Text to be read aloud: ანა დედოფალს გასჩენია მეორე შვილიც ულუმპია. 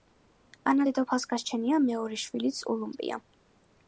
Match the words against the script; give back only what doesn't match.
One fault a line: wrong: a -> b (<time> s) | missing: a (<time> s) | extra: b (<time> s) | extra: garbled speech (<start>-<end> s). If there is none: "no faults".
no faults